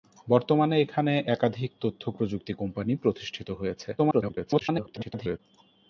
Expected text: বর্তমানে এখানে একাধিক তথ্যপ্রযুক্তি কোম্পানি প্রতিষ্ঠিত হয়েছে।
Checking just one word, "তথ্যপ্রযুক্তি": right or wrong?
right